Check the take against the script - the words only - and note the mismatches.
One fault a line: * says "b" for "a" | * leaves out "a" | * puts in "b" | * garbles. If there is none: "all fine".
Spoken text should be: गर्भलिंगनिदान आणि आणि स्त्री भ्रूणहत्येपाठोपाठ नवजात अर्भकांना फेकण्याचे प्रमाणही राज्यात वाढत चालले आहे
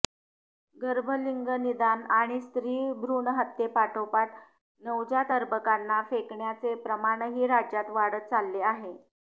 * leaves out "आणि"